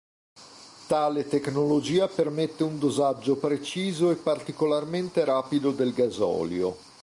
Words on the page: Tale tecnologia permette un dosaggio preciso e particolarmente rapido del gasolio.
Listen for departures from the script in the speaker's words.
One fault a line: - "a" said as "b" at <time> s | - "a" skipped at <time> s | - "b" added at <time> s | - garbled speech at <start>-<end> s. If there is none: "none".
none